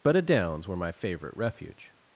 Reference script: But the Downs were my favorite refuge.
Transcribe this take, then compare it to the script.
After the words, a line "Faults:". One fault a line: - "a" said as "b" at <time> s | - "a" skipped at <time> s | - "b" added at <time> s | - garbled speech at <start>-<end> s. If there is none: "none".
But a Downs were my favorite refuge.
Faults:
- "the" said as "a" at 0.1 s